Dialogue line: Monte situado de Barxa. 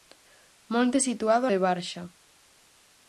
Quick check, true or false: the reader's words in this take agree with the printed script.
true